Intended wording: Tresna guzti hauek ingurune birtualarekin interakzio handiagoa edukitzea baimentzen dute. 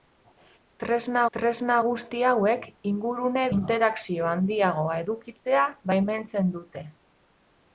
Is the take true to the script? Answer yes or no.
no